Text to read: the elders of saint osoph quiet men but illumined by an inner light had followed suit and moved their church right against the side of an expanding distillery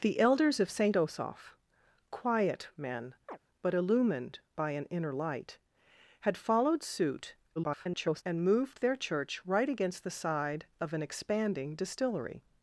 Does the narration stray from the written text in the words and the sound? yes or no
yes